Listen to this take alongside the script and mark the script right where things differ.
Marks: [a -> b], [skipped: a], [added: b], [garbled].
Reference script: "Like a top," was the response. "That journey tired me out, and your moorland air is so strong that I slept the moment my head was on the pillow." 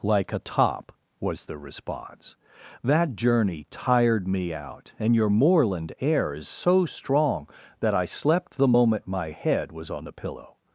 "Like a top," was the response. "That journey tired me out, and your moorland air is so strong that I slept the moment my head was on the pillow."